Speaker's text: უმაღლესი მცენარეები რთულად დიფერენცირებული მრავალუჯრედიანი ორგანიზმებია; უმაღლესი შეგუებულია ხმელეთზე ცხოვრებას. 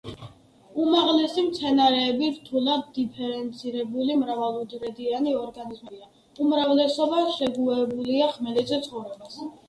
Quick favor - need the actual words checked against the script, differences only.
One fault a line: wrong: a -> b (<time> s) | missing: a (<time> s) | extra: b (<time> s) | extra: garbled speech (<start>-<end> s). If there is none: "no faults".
wrong: უმაღლესი -> უმრავლესობა (6.5 s)